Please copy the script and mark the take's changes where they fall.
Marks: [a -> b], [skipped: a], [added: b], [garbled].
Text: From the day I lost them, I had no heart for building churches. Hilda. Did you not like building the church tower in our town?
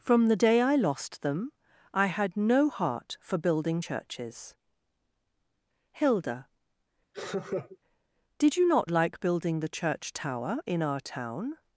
From the day I lost them, I had no heart for building churches. Hilda. Did you not like building the church tower in our town?